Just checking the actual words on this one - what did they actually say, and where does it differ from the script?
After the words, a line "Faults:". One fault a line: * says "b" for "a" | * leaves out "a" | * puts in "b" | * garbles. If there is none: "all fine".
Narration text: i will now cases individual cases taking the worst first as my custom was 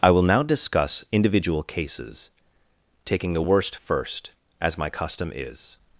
i will now discuss individual cases taking the worst first as my custom is
Faults:
* says "discuss" for "cases"
* says "is" for "was"